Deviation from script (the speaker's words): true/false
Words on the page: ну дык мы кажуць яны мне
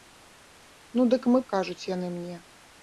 false